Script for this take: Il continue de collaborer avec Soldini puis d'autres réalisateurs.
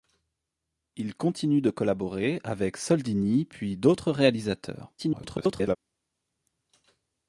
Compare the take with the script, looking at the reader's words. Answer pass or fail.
fail